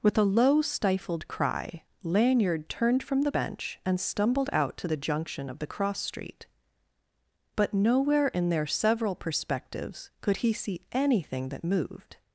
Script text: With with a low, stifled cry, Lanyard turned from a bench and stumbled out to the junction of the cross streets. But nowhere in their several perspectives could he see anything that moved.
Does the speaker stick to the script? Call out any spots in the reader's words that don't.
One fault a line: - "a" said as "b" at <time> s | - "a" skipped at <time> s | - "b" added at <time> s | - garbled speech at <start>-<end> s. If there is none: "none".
- "with" skipped at 0.2 s
- "a" said as "the" at 3.2 s
- "streets" said as "street" at 6.0 s